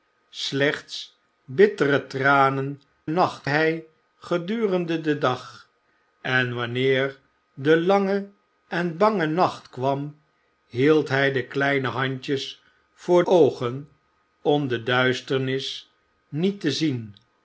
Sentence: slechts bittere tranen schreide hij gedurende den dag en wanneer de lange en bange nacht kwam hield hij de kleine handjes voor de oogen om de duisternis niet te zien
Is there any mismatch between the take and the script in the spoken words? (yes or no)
yes